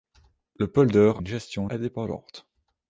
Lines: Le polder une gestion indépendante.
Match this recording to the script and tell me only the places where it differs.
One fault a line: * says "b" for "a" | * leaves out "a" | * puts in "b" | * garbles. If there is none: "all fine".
all fine